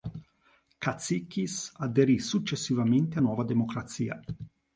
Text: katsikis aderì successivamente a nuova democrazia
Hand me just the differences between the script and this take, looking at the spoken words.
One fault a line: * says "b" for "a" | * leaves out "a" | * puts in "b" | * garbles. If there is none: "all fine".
all fine